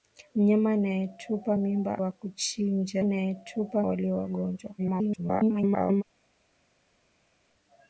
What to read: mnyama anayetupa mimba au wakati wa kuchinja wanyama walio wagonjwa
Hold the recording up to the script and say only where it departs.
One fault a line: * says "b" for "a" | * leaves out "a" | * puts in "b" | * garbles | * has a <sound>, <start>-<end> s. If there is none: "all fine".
* leaves out "au wakati"
* says "anayetupa" for "wanyama"
* garbles